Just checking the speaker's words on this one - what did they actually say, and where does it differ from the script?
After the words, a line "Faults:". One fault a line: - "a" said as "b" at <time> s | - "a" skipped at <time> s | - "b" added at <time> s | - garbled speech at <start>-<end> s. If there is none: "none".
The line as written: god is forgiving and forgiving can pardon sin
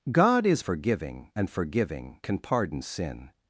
god is forgiving and forgiving can pardon sin
Faults:
none